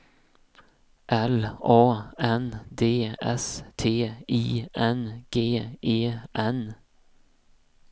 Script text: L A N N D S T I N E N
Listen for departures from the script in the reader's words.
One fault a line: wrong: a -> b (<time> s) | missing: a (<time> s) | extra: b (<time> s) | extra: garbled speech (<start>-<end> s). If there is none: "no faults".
missing: N (2.6 s)
extra: G (5.3 s)